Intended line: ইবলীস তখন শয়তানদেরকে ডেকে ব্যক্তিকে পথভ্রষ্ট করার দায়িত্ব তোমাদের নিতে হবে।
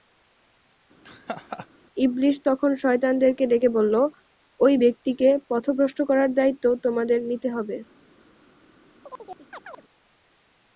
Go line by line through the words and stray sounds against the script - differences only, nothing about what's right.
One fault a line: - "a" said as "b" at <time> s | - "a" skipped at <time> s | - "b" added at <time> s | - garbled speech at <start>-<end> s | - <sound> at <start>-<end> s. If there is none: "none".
- laugh at 1.0-1.7 s
- "বলল ঐ" added at 3.8 s
- chirp at 9.0-9.8 s